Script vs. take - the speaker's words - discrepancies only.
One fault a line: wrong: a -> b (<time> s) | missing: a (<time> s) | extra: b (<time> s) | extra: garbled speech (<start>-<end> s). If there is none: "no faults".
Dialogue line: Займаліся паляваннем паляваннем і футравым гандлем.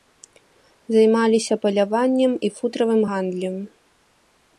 missing: паляваннем (2.3 s)